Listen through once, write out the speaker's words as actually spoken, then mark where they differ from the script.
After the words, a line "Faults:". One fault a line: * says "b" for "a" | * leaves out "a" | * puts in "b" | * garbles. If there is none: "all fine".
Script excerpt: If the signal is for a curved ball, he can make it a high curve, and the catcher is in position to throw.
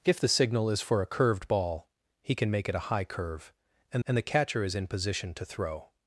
If the signal is for a curved ball, he can make it a high curve, and and the catcher is in position to throw.
Faults:
* puts in "and"